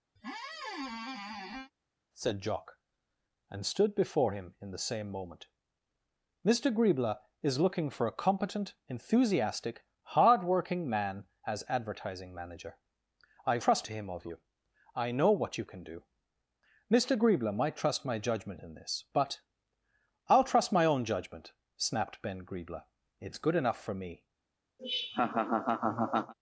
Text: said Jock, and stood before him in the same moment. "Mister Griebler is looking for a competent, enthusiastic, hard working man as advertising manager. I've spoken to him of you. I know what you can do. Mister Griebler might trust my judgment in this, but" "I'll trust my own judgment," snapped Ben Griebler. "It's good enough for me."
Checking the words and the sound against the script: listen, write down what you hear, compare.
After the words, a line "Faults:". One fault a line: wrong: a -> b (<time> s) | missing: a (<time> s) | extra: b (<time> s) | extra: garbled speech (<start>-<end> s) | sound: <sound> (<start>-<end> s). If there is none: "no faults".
said Jock, and stood before him in the same moment. "Mister Griebler is looking for a competent, enthusiastic, hard working man as advertising manager. I've trust to him of you. I know what you can do. Mister Griebler might trust my judgment in this, but" "I'll trust my own judgment," snapped Ben Griebler. "It's good enough for me."
Faults:
sound: squeak (0.2-1.7 s)
wrong: spoken -> trust (13.6 s)
sound: laugh (24.8-26.3 s)